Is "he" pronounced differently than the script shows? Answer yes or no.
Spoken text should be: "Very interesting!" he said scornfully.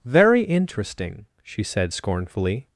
yes